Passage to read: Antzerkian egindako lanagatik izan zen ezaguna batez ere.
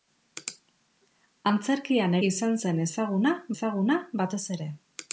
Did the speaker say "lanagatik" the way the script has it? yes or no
no